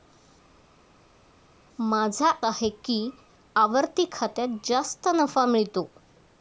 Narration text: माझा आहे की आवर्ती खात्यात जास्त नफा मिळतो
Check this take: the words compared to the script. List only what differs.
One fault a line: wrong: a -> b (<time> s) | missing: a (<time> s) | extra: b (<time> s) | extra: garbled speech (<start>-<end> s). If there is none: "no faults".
no faults